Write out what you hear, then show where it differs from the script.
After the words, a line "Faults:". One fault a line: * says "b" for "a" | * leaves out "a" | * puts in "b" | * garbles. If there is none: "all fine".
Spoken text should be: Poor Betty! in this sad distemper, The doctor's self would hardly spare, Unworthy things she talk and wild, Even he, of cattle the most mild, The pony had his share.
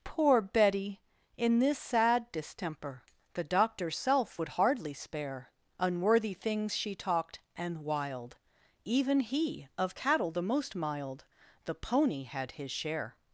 Poor Betty! in this sad distemper, The doctor's self would hardly spare, Unworthy things she talked and wild, Even he, of cattle the most mild, The pony had his share.
Faults:
* says "talked" for "talk"